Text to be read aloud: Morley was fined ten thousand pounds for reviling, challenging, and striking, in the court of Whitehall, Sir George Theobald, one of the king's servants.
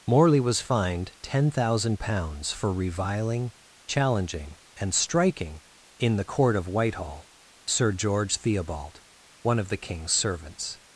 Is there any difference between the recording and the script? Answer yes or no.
no